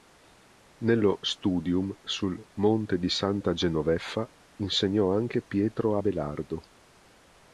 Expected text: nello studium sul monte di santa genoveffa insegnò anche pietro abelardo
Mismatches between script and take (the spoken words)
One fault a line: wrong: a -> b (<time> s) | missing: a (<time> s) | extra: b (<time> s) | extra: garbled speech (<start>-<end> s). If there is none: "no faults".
no faults